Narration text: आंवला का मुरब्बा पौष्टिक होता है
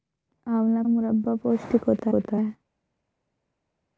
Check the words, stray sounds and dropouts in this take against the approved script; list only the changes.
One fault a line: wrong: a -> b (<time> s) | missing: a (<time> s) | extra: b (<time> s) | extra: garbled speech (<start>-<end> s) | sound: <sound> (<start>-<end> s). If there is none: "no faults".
missing: का (0.8 s)
extra: होता (2.1 s)